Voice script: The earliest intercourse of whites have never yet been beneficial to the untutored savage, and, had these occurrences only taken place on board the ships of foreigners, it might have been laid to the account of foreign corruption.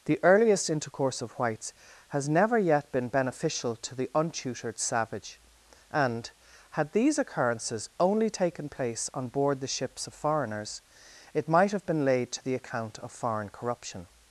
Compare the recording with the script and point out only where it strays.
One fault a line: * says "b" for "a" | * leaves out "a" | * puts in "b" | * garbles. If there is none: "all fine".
* says "has" for "have"